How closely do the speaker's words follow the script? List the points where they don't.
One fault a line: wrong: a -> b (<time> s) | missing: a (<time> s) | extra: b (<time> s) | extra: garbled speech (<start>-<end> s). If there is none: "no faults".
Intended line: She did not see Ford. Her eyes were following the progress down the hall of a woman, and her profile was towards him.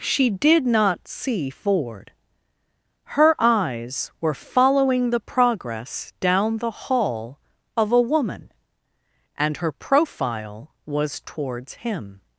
no faults